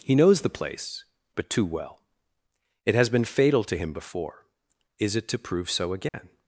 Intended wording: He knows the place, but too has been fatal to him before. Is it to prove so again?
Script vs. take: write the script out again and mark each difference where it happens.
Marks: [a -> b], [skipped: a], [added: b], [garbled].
He knows the place, but too [added: well It] has been fatal to him before. Is it to prove so again?